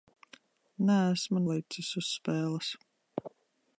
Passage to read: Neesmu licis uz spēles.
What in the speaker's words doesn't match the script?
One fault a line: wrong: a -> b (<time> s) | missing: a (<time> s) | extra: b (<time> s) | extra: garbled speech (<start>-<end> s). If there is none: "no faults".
no faults